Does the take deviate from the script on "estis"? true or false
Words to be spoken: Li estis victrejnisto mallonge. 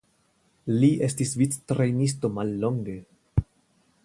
false